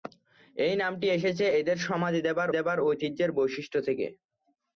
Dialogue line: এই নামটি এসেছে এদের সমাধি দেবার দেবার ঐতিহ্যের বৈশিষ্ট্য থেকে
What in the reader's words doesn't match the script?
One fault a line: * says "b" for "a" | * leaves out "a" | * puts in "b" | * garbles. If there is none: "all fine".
all fine